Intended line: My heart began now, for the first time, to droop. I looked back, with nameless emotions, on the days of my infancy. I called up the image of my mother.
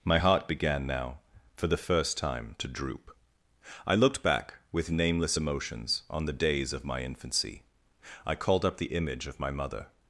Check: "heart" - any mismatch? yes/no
no